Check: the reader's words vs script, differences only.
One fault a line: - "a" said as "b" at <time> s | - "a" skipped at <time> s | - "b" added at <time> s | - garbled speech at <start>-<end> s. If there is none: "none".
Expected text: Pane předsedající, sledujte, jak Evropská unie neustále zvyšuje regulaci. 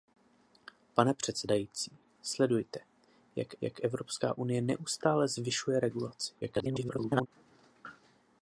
- "jak" added at 3.6 s
- garbled speech at 6.4-7.3 s